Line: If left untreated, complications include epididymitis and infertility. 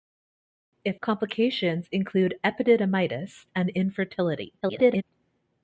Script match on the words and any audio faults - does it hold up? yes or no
no